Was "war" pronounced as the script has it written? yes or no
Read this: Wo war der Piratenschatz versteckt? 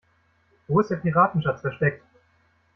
no